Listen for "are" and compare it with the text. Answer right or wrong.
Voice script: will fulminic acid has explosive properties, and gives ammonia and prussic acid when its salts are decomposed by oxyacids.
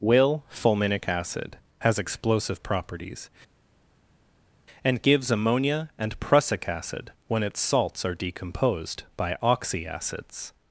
right